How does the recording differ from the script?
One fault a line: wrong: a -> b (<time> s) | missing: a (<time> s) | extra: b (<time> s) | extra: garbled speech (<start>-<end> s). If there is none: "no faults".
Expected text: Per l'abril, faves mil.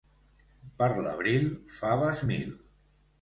no faults